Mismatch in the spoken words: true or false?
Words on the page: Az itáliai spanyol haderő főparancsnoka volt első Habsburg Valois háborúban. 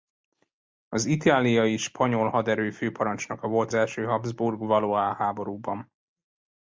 false